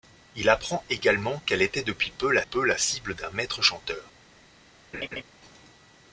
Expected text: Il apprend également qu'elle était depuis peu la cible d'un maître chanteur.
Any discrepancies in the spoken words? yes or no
yes